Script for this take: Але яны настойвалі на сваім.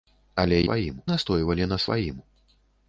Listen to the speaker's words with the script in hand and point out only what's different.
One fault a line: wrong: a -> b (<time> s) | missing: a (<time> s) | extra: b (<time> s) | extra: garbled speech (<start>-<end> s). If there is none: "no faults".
wrong: яны -> сваім (0.7 s)